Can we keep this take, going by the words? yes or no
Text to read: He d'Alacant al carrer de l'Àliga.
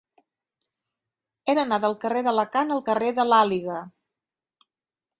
no